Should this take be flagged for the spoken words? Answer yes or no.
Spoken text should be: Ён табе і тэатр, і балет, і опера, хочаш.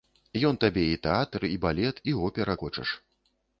no